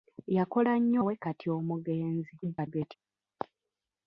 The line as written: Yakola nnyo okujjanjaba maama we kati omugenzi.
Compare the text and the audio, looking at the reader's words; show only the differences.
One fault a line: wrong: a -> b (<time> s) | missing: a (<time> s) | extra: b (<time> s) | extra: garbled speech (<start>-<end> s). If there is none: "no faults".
missing: okujjanjaba maama (1.0 s)
extra: garbled speech (2.4-3.0 s)